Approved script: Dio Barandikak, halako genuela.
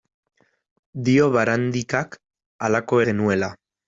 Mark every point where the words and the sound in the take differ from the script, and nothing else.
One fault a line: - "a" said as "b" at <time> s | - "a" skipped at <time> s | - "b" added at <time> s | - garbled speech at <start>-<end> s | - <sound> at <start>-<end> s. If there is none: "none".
none